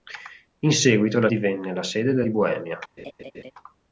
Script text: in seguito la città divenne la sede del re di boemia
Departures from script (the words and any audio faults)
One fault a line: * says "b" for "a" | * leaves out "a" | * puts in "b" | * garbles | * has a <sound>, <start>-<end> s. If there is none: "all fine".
* leaves out "città"
* leaves out "re"
* has a laugh, 3.0-3.5 s